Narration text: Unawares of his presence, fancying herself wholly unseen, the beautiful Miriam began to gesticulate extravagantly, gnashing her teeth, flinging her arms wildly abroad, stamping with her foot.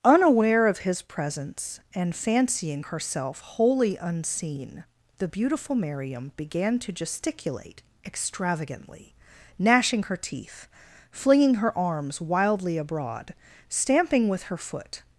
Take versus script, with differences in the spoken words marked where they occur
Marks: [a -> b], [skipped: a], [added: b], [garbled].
[Unawares -> Unaware] of his presence, [added: and] fancying herself wholly unseen, the beautiful Miriam began to gesticulate extravagantly, gnashing her teeth, flinging her arms wildly abroad, stamping with her foot.